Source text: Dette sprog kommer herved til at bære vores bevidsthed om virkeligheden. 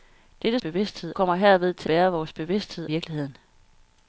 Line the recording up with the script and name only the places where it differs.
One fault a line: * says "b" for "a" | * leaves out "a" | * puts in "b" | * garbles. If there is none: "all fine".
* says "bevidsthed" for "sprog"
* leaves out "at"
* leaves out "om"